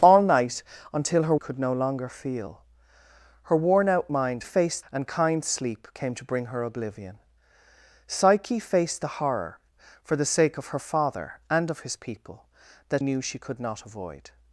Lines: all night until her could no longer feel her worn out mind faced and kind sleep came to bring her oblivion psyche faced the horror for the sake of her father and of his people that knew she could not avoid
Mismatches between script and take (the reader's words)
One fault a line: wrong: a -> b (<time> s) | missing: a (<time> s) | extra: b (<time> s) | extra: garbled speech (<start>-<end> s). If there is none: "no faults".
no faults